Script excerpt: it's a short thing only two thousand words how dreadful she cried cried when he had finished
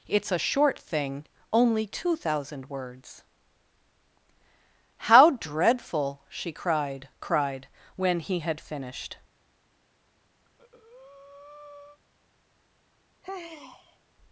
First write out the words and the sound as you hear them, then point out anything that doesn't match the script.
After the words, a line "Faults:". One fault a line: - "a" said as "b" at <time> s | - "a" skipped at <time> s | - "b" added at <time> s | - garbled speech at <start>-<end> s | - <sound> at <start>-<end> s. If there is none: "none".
it's a short thing only two thousand words how dreadful she cried cried when he had finished
Faults:
- breath at 10.4-12.0 s
- sigh at 13.2-14.0 s